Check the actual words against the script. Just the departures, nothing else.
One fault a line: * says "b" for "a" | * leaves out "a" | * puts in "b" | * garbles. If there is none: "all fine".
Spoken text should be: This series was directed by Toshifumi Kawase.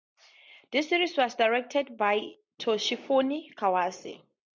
all fine